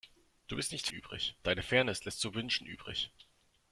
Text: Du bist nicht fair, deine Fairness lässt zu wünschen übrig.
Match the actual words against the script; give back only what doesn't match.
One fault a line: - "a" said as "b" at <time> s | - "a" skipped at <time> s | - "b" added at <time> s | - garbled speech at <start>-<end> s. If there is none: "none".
- "fair" said as "übrig" at 0.9 s